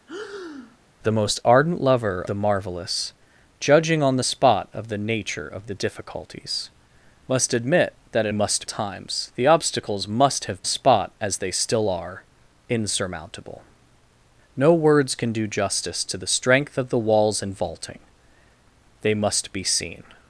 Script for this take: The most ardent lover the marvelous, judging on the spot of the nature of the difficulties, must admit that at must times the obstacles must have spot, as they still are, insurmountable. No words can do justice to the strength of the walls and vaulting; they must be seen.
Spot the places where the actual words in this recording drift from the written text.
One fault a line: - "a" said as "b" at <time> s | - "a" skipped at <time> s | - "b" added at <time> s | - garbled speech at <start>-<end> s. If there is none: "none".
none